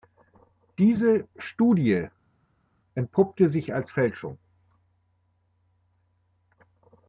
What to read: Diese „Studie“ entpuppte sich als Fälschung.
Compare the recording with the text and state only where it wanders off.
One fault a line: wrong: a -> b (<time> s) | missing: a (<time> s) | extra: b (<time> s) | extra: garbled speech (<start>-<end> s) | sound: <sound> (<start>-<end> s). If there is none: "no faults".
no faults